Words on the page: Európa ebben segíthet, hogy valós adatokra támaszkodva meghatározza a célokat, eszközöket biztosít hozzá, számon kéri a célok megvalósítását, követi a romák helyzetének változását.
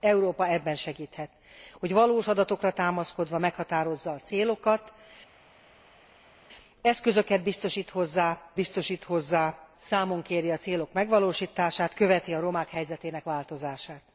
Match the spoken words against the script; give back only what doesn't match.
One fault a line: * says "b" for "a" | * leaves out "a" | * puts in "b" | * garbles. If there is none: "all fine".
* puts in "biztosít hozzá"